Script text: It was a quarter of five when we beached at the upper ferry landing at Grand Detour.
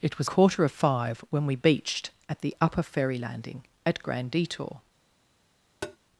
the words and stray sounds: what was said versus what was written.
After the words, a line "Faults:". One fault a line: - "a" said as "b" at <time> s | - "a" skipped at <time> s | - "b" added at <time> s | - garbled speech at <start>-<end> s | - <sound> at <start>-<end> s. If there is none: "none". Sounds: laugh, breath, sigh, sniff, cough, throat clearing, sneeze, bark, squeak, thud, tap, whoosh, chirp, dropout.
It was quarter of five when we beached at the upper ferry landing at Grand Detour.
Faults:
- "a" skipped at 0.3 s
- tap at 5.8-6.0 s